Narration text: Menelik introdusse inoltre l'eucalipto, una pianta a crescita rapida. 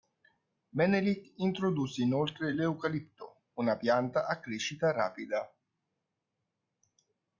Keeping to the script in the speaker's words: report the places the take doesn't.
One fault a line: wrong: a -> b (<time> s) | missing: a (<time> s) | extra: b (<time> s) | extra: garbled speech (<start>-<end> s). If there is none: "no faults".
no faults